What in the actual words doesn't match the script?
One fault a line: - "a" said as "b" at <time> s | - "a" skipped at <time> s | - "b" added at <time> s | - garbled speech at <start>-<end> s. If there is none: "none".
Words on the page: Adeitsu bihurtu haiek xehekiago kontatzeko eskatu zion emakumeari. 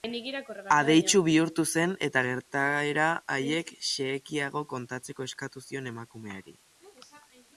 - "zen eta gertaera" added at 1.7 s